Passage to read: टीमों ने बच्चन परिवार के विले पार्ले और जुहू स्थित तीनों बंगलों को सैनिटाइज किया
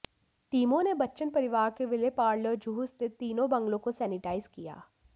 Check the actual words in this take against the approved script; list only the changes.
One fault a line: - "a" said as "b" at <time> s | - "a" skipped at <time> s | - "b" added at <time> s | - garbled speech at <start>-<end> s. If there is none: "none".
none